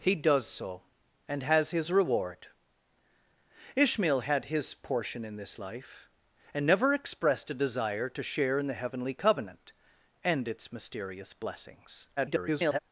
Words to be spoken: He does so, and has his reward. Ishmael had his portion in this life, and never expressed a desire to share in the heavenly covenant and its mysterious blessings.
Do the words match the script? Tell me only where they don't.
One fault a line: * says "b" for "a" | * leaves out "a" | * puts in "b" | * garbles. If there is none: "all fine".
* garbles